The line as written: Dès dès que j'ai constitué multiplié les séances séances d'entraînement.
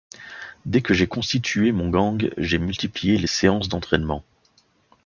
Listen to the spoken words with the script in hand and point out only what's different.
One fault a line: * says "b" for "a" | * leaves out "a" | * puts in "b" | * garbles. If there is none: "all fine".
* leaves out "dès"
* puts in "mon gang j'ai"
* leaves out "séances"